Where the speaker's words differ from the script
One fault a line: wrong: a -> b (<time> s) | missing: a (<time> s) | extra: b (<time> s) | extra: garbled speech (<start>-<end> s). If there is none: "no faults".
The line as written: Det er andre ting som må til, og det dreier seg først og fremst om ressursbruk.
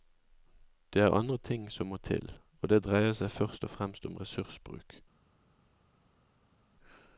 no faults